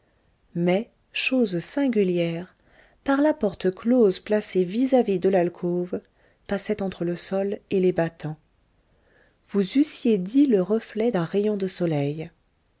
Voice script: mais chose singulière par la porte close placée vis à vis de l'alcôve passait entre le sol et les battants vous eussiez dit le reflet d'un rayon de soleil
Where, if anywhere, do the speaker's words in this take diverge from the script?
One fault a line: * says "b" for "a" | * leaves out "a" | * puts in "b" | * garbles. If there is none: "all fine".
all fine